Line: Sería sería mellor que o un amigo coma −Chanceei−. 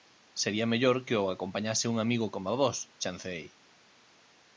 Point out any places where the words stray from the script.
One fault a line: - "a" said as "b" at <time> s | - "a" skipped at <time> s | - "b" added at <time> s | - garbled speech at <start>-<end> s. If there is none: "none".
- "sería" skipped at 0.7 s
- "acompañase" added at 1.4 s
- "Vós" added at 2.6 s